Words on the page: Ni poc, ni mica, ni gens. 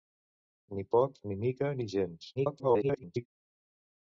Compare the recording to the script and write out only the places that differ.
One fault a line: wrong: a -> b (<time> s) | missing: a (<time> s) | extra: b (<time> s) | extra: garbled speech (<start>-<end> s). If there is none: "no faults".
extra: garbled speech (2.4-3.3 s)